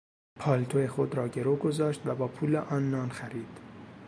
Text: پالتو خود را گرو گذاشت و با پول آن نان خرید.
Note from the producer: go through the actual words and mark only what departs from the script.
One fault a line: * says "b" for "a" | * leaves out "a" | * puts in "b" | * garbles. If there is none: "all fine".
all fine